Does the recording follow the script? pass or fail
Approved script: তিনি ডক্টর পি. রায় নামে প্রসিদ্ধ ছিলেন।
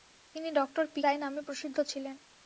pass